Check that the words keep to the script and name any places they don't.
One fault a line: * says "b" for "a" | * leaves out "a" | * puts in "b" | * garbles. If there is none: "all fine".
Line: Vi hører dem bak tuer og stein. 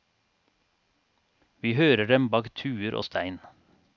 all fine